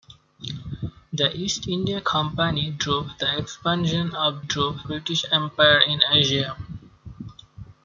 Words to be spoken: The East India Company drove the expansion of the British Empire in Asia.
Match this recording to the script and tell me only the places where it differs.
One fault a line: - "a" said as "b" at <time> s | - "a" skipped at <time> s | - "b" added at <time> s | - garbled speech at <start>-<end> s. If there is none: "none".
- "the" said as "drove" at 4.4 s